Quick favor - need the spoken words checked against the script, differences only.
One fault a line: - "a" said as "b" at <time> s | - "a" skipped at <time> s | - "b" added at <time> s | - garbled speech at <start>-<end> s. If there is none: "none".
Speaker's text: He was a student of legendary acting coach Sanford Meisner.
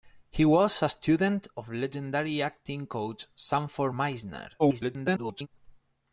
- garbled speech at 4.6-5.5 s